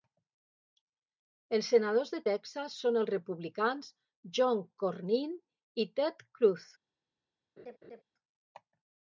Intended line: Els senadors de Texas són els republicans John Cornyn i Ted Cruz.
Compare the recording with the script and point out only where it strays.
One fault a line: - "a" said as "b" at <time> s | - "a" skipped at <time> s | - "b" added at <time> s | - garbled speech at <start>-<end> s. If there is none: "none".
none